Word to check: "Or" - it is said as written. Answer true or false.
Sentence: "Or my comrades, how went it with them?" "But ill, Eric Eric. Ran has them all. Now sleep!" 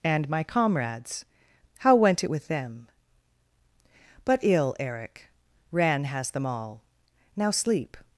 false